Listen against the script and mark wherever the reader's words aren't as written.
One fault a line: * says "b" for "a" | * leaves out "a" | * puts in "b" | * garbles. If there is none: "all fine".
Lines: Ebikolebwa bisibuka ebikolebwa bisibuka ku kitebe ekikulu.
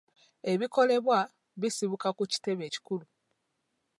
* leaves out "ebikolebwa bisibuka"